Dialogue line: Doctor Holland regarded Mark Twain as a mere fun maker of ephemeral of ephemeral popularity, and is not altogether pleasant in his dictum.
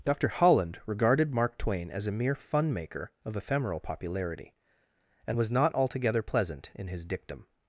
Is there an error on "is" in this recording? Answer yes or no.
yes